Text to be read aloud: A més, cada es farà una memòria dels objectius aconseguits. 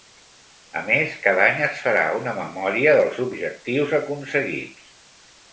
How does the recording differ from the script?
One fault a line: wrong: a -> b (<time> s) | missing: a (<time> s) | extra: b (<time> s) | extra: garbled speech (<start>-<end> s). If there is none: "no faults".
extra: any (1.5 s)